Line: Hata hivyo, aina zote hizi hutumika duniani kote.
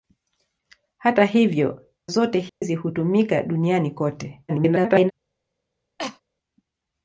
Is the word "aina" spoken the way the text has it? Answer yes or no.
no